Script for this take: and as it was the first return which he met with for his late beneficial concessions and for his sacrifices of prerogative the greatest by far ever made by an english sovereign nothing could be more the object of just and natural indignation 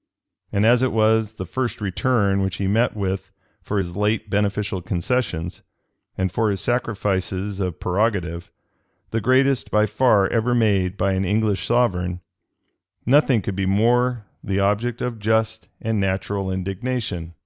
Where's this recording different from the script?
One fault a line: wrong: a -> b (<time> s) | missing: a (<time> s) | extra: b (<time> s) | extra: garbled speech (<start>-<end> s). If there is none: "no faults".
no faults